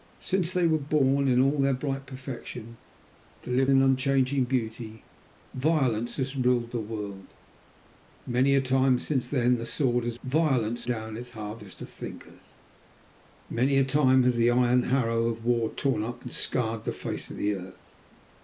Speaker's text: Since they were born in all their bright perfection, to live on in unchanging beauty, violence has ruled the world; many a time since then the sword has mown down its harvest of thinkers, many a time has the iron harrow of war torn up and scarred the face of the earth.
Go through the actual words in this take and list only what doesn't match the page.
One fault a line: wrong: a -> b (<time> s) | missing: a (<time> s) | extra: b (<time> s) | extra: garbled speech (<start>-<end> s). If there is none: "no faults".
missing: on (3.7 s)
wrong: mown -> violence (10.2 s)